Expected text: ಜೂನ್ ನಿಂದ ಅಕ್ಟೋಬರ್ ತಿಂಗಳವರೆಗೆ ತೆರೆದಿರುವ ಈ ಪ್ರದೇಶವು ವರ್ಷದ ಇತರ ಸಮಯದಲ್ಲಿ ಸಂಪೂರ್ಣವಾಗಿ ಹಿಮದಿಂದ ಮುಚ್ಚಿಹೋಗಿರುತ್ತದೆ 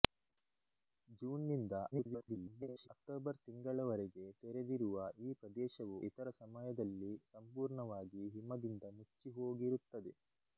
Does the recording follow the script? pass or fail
fail